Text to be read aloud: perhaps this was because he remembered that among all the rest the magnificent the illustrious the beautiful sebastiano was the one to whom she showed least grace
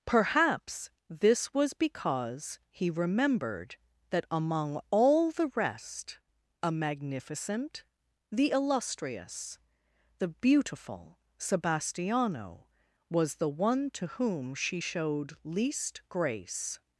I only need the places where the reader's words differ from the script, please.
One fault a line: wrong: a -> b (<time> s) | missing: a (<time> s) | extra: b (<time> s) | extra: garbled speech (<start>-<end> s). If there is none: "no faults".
wrong: the -> a (6.6 s)